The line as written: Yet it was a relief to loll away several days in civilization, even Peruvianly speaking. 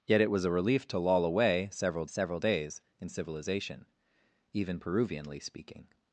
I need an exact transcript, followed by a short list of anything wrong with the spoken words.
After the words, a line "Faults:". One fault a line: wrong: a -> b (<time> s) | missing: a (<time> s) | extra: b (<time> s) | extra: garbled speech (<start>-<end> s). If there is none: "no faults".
Yet it was a relief to loll away several several days in civilization, even Peruvianly speaking.
Faults:
extra: several (2.1 s)